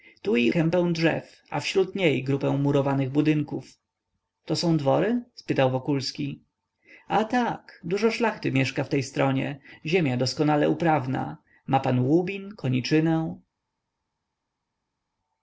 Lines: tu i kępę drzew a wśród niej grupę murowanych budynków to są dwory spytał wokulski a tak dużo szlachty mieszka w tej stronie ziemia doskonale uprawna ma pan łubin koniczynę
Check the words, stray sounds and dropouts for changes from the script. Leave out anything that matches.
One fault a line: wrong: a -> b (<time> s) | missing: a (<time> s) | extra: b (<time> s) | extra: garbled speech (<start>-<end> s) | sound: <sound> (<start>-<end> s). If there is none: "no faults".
no faults